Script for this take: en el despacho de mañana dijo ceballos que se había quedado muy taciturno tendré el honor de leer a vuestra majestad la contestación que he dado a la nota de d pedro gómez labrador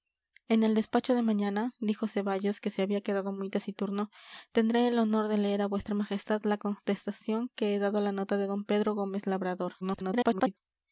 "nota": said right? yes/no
yes